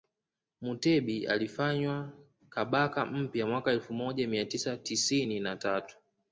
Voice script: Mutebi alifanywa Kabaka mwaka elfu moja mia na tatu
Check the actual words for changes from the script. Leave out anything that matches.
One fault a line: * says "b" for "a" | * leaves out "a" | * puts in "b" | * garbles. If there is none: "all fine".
* puts in "mpya"
* puts in "tisa tisini"